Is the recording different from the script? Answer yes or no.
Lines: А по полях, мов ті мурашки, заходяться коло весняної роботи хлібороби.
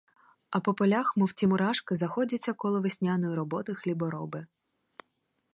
no